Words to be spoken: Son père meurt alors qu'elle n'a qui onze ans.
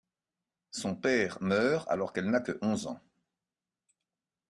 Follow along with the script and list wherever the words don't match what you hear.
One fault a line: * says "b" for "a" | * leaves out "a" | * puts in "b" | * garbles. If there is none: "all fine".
* says "que" for "qui"